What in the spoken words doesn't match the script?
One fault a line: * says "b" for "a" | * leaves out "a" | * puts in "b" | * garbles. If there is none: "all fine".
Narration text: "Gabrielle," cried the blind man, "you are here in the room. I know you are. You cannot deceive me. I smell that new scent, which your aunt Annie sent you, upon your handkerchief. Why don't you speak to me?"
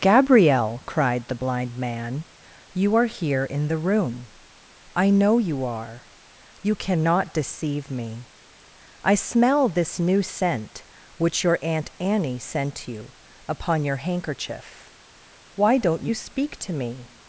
* says "this" for "that"